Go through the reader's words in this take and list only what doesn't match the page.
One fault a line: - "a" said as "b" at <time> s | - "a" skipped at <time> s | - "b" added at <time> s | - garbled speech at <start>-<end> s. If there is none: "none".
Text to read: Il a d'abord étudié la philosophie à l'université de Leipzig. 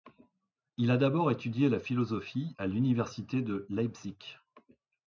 none